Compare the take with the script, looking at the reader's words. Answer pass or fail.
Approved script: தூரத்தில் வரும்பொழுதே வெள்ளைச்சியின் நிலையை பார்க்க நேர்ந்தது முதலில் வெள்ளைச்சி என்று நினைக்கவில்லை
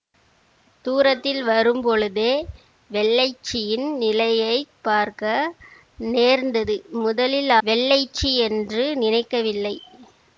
pass